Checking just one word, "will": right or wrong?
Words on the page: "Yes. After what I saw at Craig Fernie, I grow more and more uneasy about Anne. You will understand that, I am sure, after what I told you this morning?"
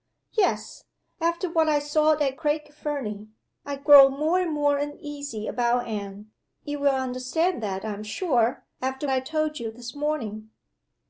right